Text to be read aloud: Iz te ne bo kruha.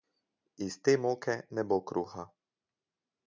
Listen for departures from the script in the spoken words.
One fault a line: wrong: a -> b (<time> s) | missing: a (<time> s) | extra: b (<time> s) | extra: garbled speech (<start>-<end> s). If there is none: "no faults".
extra: moke (1.0 s)